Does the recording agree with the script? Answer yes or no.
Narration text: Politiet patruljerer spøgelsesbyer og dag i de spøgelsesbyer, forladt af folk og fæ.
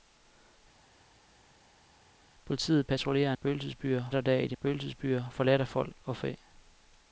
yes